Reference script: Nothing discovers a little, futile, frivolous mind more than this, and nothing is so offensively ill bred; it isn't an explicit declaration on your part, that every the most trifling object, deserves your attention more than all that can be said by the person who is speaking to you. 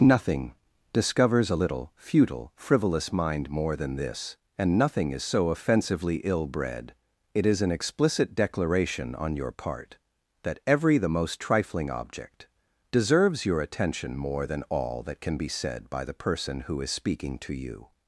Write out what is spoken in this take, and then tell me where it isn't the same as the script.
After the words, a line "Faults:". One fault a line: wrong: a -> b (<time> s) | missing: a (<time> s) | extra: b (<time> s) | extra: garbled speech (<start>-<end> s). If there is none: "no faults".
Nothing discovers a little, futile, frivolous mind more than this, and nothing is so offensively ill bred; it is an explicit declaration on your part, that every the most trifling object, deserves your attention more than all that can be said by the person who is speaking to you.
Faults:
wrong: isn't -> is (7.4 s)